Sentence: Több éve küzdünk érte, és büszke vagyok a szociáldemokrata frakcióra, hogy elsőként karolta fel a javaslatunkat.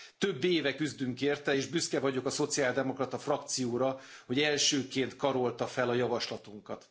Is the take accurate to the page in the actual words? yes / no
yes